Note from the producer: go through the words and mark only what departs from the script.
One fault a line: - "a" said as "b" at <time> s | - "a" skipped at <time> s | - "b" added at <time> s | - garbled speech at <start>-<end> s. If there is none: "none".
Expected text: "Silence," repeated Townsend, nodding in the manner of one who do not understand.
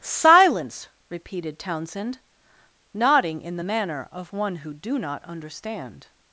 none